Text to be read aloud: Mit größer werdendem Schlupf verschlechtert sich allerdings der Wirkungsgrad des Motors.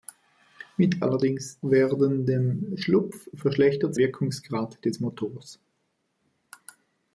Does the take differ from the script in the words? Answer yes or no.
yes